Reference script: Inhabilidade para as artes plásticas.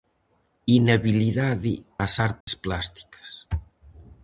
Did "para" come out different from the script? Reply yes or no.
yes